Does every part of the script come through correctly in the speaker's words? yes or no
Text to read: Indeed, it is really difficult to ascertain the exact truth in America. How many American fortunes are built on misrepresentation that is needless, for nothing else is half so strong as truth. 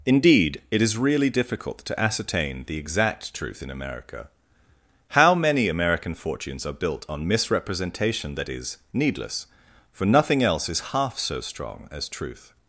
yes